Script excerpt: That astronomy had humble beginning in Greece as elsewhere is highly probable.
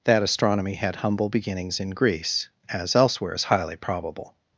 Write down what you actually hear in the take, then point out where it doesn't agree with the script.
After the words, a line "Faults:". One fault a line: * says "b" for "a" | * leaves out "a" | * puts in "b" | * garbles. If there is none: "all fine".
That astronomy had humble beginnings in Greece as elsewhere is highly probable.
Faults:
* says "beginnings" for "beginning"